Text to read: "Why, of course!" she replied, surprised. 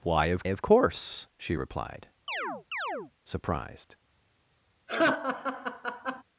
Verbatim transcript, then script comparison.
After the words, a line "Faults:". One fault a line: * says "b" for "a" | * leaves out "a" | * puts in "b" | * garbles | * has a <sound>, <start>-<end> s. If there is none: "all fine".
"Why, of of course!" she replied, surprised.
Faults:
* puts in "of"
* has a chirp, 2.3-3.1 s
* has a laugh, 4.9-6.2 s